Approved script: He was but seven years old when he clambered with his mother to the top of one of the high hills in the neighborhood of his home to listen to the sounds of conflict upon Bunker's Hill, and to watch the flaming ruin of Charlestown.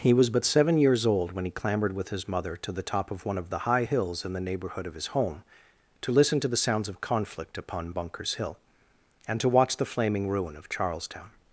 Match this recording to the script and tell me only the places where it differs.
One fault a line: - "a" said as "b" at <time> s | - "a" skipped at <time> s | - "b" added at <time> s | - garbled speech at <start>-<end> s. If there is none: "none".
none